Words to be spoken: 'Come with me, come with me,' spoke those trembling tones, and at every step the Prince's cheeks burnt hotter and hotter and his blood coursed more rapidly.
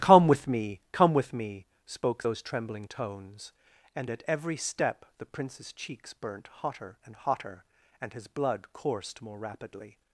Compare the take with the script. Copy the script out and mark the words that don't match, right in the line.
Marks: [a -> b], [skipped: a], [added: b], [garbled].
'Come with me, come with me,' spoke those trembling tones, and at every step the Prince's cheeks burnt hotter and hotter and his blood coursed more rapidly.